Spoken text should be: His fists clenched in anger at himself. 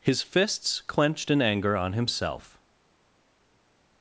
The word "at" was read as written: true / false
false